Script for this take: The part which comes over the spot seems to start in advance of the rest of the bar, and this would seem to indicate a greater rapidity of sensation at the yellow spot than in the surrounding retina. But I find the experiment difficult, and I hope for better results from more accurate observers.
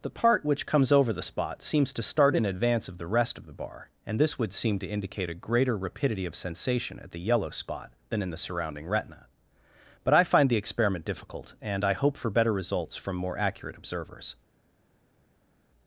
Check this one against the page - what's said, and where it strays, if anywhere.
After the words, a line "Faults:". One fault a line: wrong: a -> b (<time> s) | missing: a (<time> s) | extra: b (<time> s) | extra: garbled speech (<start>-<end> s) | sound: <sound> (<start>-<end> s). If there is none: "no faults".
The part which comes over the spot seems to start in advance of the rest of the bar, and this would seem to indicate a greater rapidity of sensation at the yellow spot than in the surrounding retina. But I find the experiment difficult, and I hope for better results from more accurate observers.
Faults:
no faults